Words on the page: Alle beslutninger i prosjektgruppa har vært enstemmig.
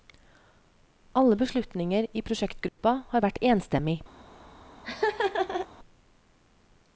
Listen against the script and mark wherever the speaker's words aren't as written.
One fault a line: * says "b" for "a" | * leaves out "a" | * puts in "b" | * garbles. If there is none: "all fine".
all fine